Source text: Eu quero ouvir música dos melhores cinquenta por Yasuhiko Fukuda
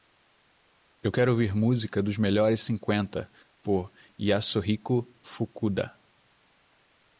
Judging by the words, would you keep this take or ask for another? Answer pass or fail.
pass